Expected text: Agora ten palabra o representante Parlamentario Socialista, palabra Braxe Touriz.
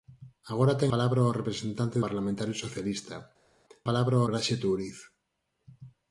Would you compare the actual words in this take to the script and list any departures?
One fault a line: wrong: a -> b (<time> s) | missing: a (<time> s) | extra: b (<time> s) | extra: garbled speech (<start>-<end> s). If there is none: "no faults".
no faults